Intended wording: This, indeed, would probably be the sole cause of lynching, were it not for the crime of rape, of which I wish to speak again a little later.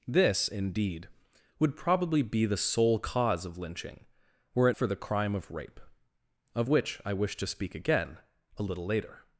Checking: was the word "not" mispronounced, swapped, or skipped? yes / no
yes